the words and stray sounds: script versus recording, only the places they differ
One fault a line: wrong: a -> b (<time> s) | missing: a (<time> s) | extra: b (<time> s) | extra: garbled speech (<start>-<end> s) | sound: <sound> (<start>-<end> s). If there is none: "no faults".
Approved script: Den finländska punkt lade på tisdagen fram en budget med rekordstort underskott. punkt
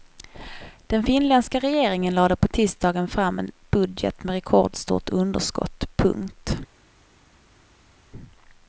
wrong: punkt -> regeringen (1.6 s)